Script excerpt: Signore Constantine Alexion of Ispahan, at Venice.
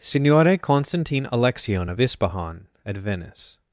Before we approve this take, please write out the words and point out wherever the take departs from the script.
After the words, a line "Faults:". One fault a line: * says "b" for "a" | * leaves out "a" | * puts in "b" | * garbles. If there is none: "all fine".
Signore Constantine Alexion of Ispahan, at Venice.
Faults:
all fine